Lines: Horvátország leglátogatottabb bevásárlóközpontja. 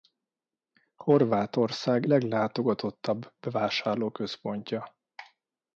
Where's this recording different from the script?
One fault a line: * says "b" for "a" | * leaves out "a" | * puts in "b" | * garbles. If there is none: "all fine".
all fine